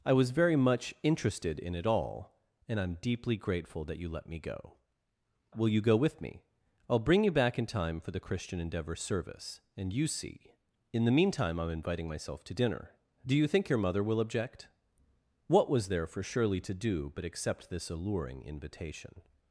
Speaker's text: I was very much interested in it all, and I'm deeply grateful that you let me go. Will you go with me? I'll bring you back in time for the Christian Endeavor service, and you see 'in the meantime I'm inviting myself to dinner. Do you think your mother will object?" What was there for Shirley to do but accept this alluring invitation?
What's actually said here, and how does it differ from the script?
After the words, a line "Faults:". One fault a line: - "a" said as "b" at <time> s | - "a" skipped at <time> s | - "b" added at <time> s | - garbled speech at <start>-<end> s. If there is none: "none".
I was very much interested in it all, and I'm deeply grateful that you let me go. Will you go with me? I'll bring you back in time for the Christian Endeavor service, and you see 'in the meantime I'm inviting myself to dinner. Do you think your mother will object?" What was there for Shirley to do but accept this alluring invitation?
Faults:
none